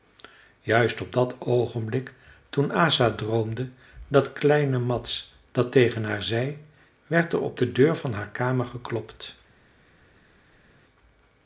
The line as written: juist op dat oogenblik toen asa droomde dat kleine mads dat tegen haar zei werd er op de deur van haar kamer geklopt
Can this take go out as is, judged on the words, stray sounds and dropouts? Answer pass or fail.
pass